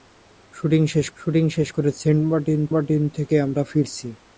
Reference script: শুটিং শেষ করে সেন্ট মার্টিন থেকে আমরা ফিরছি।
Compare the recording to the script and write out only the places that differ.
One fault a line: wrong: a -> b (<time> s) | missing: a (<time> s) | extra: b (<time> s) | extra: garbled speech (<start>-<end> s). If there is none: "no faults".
extra: শুটিং শেষ (1.2 s)
extra: মার্টিন (2.7 s)